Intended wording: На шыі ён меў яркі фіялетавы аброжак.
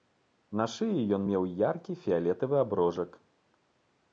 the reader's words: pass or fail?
pass